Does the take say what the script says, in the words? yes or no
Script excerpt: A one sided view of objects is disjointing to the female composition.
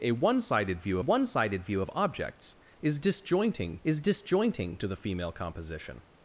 no